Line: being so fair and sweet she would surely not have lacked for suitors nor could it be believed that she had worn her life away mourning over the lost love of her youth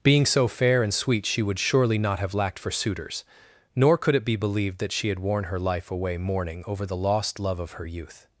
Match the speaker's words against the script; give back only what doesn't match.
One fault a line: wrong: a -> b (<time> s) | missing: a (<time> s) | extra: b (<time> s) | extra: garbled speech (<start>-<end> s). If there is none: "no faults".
no faults